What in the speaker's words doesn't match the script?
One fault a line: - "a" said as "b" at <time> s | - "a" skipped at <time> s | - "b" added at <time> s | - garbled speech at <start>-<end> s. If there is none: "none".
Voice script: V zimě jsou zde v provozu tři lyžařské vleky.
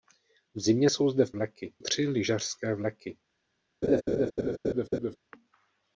- "provozu" said as "vleky" at 1.3 s